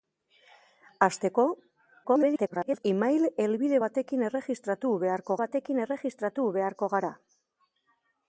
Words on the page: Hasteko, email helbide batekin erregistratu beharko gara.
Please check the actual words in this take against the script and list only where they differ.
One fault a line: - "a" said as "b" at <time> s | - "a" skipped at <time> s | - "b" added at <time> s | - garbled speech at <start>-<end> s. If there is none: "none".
- garbled speech at 2.0-2.8 s
- "batekin erregistratu beharko" added at 5.4 s